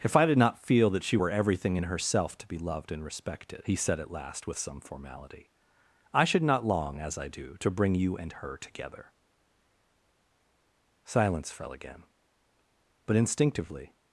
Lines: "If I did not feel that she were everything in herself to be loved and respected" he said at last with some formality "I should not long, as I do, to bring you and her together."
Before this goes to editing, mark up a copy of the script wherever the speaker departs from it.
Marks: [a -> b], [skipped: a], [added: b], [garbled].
"If I did not feel that she were everything in herself to be loved and respected" he said at last with some formality "I should not long, as I do, to bring you and her together." [added: Silence fell again But instinctively]